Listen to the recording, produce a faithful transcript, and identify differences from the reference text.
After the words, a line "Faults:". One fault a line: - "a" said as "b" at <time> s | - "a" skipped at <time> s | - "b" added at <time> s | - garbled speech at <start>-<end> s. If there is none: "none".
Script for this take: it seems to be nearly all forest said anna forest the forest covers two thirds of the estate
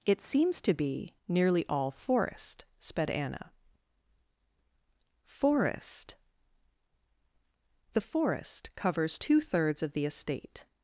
it seems to be nearly all forest sped anna forest the forest covers two thirds of the estate
Faults:
- "said" said as "sped" at 2.8 s